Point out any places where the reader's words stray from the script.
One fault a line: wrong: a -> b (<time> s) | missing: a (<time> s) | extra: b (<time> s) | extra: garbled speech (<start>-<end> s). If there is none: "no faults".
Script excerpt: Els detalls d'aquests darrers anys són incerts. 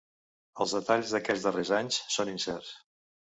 no faults